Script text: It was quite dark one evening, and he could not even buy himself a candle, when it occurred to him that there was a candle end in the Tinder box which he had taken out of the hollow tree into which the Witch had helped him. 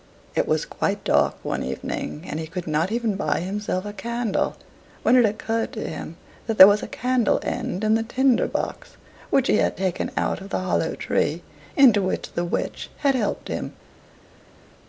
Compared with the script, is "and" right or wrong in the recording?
right